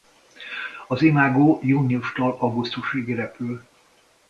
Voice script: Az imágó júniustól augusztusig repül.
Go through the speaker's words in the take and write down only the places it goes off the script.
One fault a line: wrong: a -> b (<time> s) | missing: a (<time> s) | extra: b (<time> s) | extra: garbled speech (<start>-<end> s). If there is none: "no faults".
no faults